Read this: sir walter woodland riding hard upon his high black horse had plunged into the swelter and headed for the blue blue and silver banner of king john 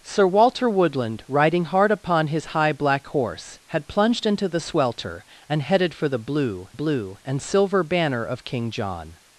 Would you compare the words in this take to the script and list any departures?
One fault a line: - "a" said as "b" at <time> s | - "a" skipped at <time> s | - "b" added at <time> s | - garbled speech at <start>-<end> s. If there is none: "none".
none